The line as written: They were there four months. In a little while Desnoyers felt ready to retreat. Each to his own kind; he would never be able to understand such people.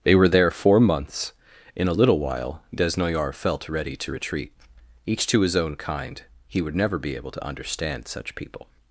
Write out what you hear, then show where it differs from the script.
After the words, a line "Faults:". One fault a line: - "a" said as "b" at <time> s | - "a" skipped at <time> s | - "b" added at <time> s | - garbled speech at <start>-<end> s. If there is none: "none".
They were there four months. In a little while Desnoyers felt ready to retreat. Each to his own kind; he would never be able to understand such people.
Faults:
none